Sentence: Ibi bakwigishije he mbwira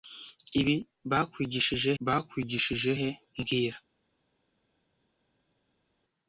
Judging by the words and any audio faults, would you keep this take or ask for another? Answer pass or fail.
fail